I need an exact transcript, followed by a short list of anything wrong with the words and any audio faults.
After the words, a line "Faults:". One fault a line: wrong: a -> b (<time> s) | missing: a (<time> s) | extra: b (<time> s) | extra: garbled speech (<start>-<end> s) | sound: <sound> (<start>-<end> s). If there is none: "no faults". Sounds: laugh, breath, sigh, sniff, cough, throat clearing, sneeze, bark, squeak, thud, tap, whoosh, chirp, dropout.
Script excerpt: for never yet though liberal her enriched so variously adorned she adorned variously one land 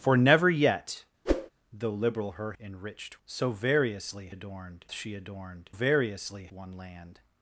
for never yet though liberal her enriched so variously adorned she adorned variously one land
Faults:
sound: whoosh (1.2-1.5 s)